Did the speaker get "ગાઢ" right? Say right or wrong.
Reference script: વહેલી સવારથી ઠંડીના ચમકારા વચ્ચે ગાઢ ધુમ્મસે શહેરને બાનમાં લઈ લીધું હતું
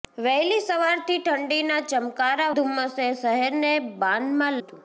wrong